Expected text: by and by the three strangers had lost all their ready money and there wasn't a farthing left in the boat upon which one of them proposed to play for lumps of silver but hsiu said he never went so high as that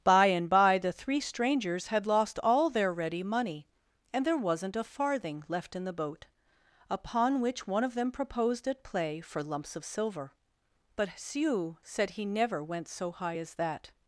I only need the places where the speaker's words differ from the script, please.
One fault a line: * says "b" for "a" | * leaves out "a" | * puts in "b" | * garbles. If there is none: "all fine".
* says "at" for "to"